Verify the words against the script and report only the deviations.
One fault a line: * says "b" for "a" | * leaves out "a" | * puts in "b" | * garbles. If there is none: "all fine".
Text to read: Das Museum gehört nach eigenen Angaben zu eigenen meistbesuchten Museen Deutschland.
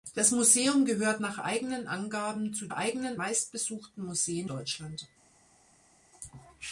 all fine